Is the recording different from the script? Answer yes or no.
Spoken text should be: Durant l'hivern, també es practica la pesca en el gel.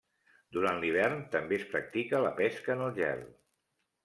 no